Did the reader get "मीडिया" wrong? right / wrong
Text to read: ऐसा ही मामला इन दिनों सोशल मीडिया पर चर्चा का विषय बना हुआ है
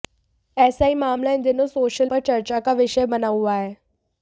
wrong